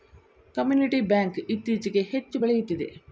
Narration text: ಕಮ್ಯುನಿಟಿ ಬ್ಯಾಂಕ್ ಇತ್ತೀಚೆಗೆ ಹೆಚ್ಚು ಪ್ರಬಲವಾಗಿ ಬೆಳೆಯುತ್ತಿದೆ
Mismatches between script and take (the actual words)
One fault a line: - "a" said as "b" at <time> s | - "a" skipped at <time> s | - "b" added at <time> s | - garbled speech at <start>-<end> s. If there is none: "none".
- "ಪ್ರಬಲವಾಗಿ" skipped at 2.4 s